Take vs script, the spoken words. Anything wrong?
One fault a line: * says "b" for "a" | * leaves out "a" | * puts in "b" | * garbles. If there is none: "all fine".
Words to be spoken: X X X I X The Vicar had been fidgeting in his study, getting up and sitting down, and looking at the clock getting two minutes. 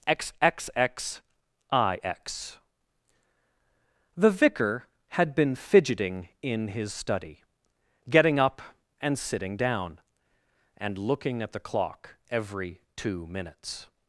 * says "every" for "getting"